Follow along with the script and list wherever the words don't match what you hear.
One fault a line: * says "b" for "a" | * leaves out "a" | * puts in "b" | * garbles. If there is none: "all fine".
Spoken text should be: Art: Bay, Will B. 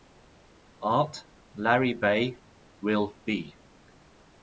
* puts in "Larry"